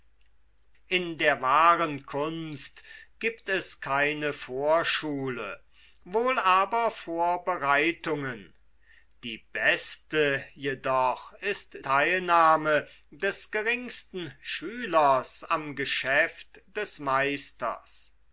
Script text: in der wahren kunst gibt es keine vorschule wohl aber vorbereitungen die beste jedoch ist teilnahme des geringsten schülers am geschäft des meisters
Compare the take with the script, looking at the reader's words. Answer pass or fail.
pass